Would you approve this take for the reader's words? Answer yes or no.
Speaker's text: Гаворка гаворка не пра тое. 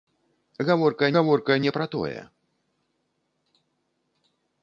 yes